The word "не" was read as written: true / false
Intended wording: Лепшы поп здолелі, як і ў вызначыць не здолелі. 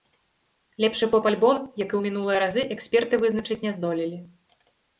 true